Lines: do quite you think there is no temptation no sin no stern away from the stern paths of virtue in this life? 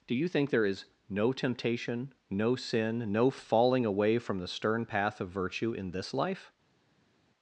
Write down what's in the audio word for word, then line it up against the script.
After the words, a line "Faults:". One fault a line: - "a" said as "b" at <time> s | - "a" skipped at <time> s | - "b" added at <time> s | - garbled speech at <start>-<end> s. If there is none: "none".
do you think there is no temptation no sin no falling away from the stern path of virtue in this life?
Faults:
- "quite" skipped at 0.1 s
- "stern" said as "falling" at 3.3 s
- "paths" said as "path" at 4.9 s